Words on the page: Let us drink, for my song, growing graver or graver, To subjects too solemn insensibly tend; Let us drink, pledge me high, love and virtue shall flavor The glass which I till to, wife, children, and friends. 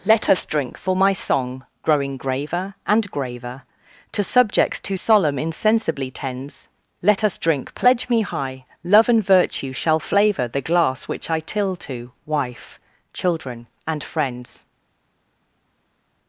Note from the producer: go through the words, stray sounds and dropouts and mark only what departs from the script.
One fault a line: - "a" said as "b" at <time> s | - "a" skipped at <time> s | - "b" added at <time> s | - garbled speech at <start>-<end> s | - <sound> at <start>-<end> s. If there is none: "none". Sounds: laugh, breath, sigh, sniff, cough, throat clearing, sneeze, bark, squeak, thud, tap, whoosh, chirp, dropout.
- "or" said as "and" at 2.9 s
- "tend" said as "tends" at 6.1 s